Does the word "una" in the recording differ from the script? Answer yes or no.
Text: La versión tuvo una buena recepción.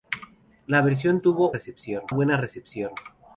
yes